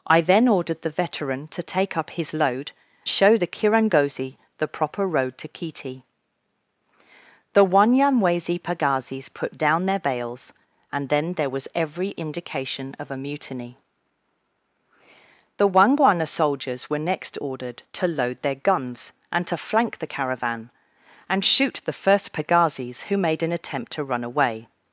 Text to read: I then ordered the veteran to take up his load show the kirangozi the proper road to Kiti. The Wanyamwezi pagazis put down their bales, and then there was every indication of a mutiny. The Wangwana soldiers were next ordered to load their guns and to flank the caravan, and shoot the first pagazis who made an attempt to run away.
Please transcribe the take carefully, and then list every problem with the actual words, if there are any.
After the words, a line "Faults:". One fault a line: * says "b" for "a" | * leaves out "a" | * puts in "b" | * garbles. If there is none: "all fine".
I then ordered the veteran to take up his load show the kirangozi the proper road to Kiti. The Wanyamwezi pagazis put down their bales, and then there was every indication of a mutiny. The Wangwana soldiers were next ordered to load their guns and to flank the caravan, and shoot the first pagazis who made an attempt to run away.
Faults:
all fine